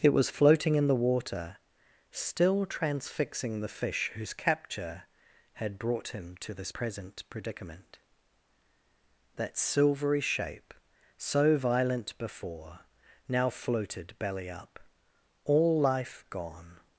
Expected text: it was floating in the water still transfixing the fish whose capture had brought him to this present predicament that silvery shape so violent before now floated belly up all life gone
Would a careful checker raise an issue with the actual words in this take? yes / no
no